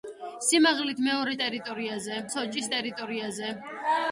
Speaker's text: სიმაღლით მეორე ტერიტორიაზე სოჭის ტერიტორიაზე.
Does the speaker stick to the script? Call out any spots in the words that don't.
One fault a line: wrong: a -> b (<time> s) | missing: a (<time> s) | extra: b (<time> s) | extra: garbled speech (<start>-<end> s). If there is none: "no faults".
no faults